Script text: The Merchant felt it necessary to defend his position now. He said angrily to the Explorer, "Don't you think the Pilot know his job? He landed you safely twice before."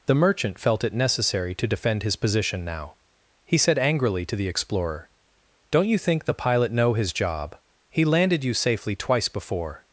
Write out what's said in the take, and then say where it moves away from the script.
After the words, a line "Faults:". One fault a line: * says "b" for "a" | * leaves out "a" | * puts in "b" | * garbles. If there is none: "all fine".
The Merchant felt it necessary to defend his position now. He said angrily to the Explorer, "Don't you think the Pilot know his job? He landed you safely twice before."
Faults:
all fine